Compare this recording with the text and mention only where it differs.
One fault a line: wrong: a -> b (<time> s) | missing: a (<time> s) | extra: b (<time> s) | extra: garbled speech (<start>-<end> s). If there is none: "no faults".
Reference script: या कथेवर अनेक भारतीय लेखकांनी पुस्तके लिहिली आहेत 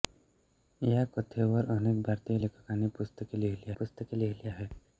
extra: पुस्तके लिहिली (3.8 s)